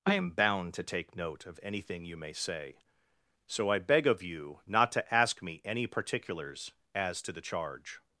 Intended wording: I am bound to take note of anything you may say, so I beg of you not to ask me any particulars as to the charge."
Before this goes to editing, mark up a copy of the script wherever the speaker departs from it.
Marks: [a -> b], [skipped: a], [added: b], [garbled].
I am bound to take note of anything you may say, so I beg of you not to ask me any particulars as to the charge."